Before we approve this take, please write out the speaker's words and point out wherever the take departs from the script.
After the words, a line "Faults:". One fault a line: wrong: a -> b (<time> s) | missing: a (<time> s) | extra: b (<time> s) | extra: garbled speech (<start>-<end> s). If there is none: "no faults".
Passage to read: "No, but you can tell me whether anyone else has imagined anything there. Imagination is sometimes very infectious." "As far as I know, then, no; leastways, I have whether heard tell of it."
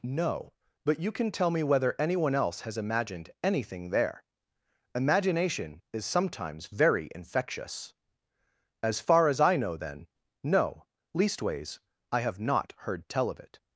"No, but you can tell me whether anyone else has imagined anything there. Imagination is sometimes very infectious." "As far as I know, then, no; leastways, I have not heard tell of it."
Faults:
wrong: whether -> not (12.4 s)